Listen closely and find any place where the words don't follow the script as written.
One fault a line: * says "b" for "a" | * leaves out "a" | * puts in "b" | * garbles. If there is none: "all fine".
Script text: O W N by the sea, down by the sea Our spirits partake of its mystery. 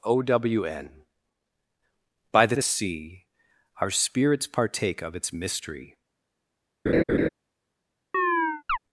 * leaves out "sea down by"